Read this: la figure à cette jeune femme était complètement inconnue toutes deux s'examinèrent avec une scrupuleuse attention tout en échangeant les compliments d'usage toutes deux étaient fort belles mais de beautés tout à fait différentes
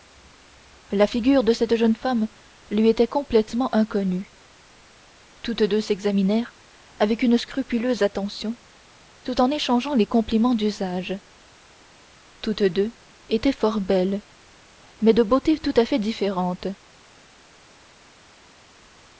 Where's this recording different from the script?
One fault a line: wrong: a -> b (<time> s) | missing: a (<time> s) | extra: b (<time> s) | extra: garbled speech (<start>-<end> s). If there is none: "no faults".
wrong: à -> de (1.4 s)
extra: lui (2.7 s)